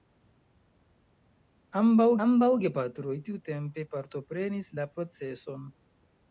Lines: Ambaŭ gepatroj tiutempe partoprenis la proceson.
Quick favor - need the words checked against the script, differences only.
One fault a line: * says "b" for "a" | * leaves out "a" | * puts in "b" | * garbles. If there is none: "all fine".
* puts in "ambaŭ"